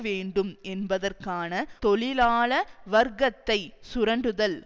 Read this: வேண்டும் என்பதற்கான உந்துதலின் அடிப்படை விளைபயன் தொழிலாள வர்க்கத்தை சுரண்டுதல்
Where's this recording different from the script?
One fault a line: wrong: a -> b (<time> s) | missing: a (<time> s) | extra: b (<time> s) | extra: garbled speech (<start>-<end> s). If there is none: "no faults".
missing: உந்துதலின் அடிப்படை விளைபயன் (1.5 s)